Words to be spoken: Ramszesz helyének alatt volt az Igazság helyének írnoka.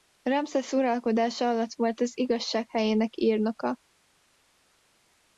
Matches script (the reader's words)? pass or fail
fail